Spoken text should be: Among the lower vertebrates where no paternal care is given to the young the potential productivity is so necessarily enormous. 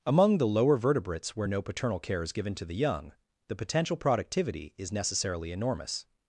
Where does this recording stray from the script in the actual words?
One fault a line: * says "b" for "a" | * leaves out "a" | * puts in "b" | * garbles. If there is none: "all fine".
* leaves out "so"